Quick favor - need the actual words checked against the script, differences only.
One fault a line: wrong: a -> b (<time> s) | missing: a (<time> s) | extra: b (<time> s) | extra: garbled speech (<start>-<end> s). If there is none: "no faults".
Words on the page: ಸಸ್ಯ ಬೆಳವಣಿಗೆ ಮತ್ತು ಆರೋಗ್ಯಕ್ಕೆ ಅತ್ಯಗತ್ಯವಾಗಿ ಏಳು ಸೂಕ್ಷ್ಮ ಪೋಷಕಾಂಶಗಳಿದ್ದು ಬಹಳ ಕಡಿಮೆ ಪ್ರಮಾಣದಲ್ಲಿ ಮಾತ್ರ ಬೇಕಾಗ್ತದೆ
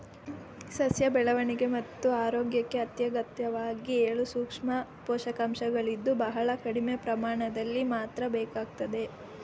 no faults